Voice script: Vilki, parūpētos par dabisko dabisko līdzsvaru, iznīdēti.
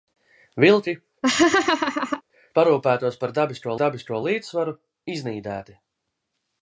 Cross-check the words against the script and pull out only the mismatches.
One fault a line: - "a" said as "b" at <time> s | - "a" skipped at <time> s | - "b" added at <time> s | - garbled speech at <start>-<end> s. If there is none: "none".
none